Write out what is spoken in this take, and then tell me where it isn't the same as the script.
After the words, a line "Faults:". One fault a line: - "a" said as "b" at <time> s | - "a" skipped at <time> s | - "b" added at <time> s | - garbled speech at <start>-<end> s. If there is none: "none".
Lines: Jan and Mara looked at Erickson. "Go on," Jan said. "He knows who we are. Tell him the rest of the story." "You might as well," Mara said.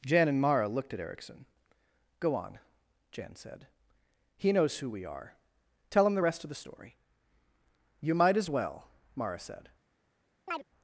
Jan and Mara looked at Erickson. "Go on," Jan said. "He knows who we are. Tell him the rest of the story." "You might as well," Mara said.
Faults:
none